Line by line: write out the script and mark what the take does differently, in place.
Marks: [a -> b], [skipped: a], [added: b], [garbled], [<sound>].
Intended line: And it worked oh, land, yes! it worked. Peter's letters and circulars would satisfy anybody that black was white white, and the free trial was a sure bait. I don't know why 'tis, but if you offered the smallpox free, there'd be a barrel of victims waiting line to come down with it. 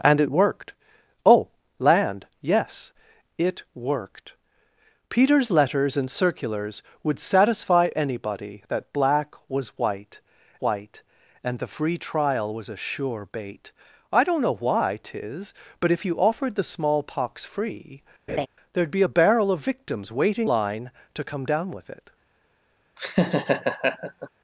And it worked oh, land, yes! it worked. Peter's letters and circulars would satisfy anybody that black was white white, and the free trial was a sure bait. I don't know why 'tis, but if you offered the smallpox free, [laugh] there'd be a barrel of victims waiting line to come down with it. [laugh]